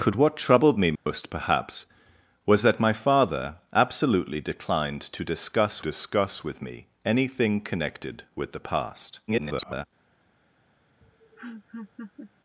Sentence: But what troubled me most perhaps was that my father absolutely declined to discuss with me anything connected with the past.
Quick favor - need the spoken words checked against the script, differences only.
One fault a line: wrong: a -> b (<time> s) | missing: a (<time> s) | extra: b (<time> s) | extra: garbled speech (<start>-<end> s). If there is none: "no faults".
extra: discuss (5.8 s)
extra: garbled speech (9.3-9.9 s)